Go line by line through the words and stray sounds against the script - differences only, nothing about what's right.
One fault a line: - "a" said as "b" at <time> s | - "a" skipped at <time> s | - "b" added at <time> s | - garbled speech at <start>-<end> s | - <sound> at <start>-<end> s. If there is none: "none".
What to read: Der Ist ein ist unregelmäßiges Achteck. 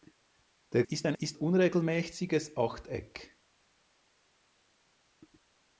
none